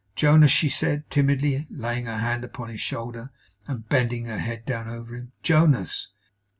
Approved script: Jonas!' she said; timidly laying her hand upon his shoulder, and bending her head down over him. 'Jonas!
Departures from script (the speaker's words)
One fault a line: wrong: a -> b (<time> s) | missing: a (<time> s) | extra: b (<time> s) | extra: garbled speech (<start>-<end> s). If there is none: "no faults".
no faults